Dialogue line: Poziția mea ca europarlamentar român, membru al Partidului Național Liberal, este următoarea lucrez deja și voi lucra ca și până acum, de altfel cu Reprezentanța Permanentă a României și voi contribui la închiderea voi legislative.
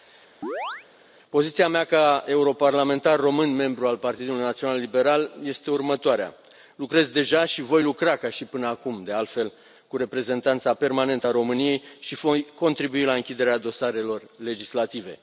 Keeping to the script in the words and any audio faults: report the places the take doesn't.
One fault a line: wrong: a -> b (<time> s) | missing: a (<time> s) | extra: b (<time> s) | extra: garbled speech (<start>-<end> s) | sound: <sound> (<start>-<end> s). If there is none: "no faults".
sound: chirp (0.4-0.9 s)
wrong: voi -> dosarelor (13.6 s)